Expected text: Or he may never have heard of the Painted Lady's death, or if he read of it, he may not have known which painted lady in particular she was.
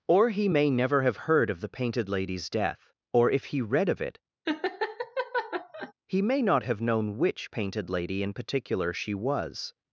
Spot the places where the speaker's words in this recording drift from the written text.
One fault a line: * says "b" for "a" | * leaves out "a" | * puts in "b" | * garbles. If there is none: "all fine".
all fine